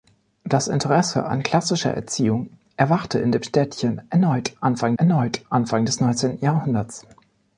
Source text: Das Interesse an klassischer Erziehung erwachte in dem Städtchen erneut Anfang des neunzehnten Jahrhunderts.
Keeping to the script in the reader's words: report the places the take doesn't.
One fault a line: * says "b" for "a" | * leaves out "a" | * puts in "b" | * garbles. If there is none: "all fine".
* puts in "erneut Anfang"